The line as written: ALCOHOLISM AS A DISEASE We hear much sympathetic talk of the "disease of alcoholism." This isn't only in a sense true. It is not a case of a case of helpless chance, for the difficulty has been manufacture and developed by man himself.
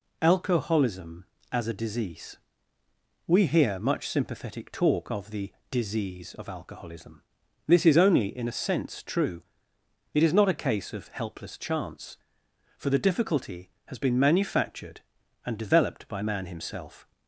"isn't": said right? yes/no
no